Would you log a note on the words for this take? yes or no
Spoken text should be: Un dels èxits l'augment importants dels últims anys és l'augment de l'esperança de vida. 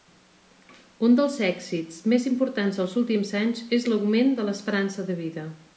yes